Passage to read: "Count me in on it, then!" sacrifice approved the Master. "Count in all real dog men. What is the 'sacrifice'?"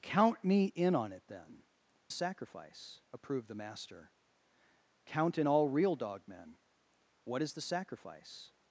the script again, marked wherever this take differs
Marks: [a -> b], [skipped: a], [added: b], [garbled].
"Count me in on it, then!" sacrifice approved the Master. "Count in all real dog men. What is the 'sacrifice'?"